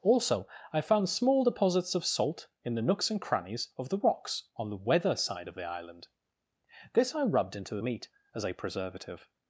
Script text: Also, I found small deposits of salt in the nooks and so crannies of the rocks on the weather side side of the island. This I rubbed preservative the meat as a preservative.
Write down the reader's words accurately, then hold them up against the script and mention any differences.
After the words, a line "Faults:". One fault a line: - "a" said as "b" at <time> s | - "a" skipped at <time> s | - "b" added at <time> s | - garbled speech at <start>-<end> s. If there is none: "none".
Also, I found small deposits of salt in the nooks and crannies of the rocks on the weather side of the island. This I rubbed into the meat as a preservative.
Faults:
- "so" skipped at 3.2 s
- "side" skipped at 5.5 s
- "preservative" said as "into" at 7.6 s